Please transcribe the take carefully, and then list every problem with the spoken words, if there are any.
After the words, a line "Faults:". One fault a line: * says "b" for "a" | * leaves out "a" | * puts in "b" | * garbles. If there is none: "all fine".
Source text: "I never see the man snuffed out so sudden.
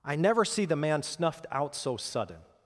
"I never see the man snuffed out so sudden.
Faults:
all fine